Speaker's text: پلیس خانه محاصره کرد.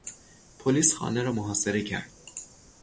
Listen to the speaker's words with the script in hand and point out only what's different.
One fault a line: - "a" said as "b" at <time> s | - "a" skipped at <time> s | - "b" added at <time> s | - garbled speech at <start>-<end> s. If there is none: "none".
- "را" added at 1.2 s